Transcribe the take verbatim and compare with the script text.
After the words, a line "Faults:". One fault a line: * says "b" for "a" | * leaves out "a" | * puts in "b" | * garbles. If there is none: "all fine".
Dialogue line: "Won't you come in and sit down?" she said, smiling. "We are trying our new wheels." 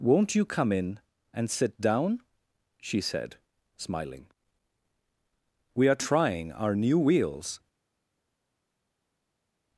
"Won't you come in and sit down?" she said, smiling. "We are trying our new wheels."
Faults:
all fine